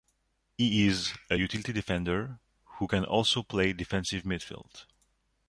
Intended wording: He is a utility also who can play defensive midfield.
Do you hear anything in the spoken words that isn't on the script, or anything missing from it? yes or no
yes